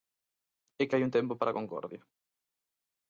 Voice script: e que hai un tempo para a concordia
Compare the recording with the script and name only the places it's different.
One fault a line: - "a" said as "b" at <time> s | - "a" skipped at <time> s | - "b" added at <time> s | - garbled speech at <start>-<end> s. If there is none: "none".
none